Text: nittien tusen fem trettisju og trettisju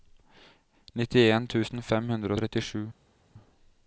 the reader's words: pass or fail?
fail